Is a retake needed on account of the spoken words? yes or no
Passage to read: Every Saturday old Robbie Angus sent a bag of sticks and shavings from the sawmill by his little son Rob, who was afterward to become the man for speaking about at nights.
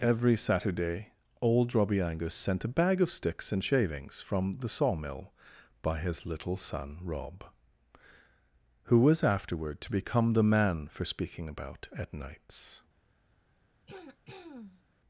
no